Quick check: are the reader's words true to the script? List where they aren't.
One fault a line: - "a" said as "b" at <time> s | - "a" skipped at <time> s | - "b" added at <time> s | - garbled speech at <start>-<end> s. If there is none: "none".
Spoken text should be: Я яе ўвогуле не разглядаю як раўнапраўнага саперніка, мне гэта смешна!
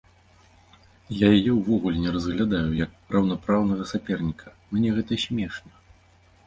none